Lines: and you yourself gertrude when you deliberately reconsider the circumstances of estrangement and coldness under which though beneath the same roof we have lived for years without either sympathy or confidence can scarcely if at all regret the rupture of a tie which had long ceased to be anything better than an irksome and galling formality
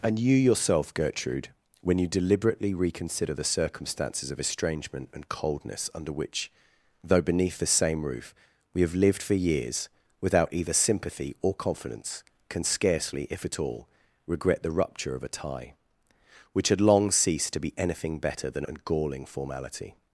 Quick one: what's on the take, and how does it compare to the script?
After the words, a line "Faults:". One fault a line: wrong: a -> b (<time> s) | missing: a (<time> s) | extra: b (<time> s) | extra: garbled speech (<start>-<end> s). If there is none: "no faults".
and you yourself gertrude when you deliberately reconsider the circumstances of estrangement and coldness under which though beneath the same roof we have lived for years without either sympathy or confidence can scarcely if at all regret the rupture of a tie which had long ceased to be anything better than and galling formality
Faults:
missing: an irksome (18.6 s)